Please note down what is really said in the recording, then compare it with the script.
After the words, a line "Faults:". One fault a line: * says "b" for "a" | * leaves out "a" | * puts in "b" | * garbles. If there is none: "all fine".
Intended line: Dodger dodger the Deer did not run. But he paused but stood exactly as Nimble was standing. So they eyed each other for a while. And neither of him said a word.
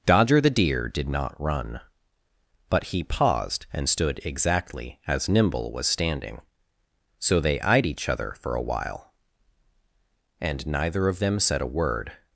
Dodger the Deer did not run. But he paused and stood exactly as Nimble was standing. So they eyed each other for a while. And neither of them said a word.
Faults:
* leaves out "dodger"
* says "and" for "but"
* says "them" for "him"